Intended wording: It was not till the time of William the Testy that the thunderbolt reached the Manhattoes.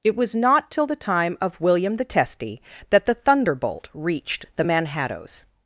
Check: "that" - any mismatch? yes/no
no